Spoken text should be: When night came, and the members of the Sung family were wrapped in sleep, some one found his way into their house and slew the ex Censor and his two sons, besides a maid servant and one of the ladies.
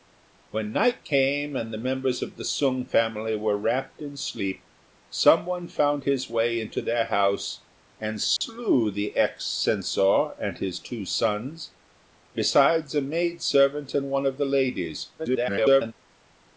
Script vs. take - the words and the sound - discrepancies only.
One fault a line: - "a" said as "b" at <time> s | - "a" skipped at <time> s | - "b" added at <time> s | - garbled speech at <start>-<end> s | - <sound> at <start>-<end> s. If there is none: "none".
- dropout at 8.4-8.4 s
- garbled speech at 15.2-15.9 s